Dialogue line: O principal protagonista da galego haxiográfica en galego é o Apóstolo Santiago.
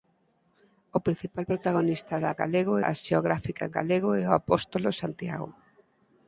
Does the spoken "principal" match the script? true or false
true